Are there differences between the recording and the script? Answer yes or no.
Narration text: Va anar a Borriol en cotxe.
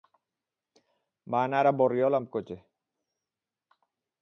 yes